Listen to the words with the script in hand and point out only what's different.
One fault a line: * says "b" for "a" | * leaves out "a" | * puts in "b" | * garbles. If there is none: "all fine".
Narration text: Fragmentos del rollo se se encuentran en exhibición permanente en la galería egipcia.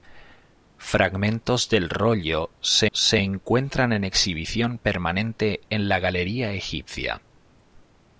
all fine